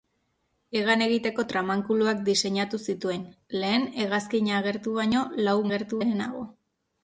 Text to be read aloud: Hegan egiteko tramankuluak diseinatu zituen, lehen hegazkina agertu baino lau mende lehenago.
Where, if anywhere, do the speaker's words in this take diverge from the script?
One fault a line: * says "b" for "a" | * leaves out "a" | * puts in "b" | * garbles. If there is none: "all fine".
* says "agertu" for "mende"